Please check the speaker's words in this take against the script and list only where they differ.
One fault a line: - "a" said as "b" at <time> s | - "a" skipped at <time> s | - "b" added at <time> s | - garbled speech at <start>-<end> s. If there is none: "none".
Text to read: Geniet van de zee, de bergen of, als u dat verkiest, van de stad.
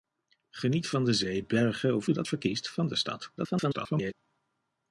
- "de" skipped at 1.4 s
- "als" skipped at 2.1 s
- garbled speech at 3.4-4.1 s